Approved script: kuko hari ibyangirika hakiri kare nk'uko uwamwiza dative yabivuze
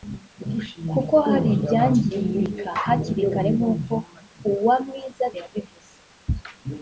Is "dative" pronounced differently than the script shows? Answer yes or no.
yes